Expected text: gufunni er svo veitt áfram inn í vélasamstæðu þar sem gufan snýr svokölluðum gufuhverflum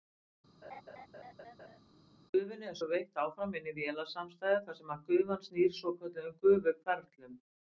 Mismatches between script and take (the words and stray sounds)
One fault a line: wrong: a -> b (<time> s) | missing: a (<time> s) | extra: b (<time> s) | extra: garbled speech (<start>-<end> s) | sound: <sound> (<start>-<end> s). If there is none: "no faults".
sound: laugh (0.6-1.8 s)